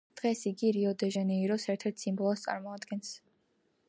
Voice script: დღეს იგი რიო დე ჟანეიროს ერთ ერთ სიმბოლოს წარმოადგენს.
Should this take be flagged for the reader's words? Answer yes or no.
no